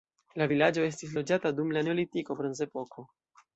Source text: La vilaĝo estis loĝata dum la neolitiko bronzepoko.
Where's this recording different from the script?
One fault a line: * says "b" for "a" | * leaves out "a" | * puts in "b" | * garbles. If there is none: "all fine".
all fine